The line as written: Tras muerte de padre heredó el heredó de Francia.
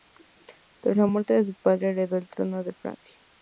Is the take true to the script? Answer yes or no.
no